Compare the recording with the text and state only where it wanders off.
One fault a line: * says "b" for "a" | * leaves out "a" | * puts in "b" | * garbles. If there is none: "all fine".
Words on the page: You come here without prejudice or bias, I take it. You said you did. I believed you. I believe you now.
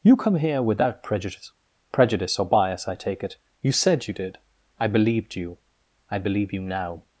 * puts in "prejudice"